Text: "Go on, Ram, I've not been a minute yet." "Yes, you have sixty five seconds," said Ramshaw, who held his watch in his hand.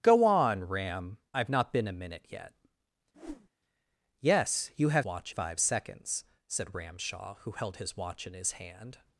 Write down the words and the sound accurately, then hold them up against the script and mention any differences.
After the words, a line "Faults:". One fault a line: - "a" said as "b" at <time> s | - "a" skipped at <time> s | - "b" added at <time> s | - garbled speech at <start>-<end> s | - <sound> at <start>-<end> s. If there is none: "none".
"Go on, Ram, I've not been a minute yet." "Yes, you have watch five seconds," said Ramshaw, who held his watch in his hand.
Faults:
- whoosh at 3.1-3.5 s
- "sixty" said as "watch" at 5.0 s